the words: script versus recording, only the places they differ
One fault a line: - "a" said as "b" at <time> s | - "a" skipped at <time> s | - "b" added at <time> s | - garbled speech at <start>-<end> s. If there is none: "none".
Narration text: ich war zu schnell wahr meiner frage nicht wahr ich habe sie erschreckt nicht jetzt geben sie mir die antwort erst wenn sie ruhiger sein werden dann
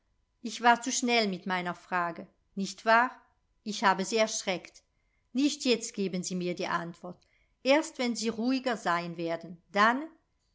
- "wahr" said as "mit" at 1.3 s